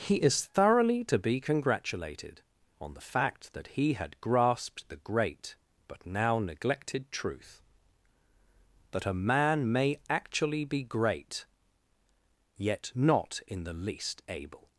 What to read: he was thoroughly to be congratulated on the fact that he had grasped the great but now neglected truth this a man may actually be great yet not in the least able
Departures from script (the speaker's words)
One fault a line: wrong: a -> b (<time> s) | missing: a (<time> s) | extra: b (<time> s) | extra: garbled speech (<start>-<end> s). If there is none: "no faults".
wrong: was -> is (0.1 s)
wrong: this -> that (8.9 s)